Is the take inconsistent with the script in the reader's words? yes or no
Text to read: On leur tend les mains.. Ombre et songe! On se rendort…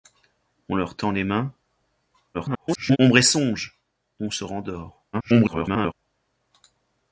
yes